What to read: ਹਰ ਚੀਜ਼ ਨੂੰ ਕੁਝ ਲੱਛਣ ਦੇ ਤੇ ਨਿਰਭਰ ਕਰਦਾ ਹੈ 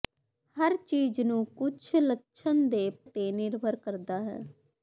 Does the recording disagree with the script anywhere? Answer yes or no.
no